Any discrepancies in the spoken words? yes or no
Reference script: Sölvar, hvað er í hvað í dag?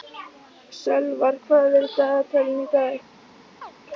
yes